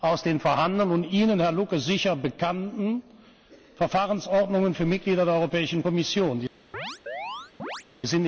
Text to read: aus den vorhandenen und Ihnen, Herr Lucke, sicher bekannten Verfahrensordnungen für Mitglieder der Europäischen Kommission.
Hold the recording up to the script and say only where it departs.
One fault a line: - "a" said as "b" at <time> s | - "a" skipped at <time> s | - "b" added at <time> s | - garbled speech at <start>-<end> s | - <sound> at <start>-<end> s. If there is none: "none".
- chirp at 6.7-7.8 s